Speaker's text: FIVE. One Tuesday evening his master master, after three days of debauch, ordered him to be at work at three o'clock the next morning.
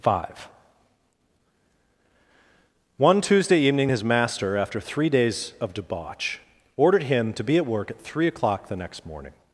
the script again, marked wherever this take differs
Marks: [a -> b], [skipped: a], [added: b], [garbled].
FIVE. One Tuesday evening his master [skipped: master,] after three days of debauch, ordered him to be at work at three o'clock the next morning.